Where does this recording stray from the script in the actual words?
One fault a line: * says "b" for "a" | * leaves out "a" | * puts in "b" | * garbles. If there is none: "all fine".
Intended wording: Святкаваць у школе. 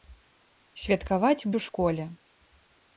all fine